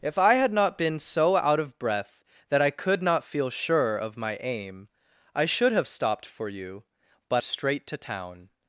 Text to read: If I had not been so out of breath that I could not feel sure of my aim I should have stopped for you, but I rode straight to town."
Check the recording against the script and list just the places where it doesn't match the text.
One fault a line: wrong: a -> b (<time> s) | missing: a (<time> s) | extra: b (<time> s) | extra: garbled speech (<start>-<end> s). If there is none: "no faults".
missing: I rode (7.4 s)